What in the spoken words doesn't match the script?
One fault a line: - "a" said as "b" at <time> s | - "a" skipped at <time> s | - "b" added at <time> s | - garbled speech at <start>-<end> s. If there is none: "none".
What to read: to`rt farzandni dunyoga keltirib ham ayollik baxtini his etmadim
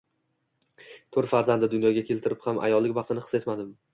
none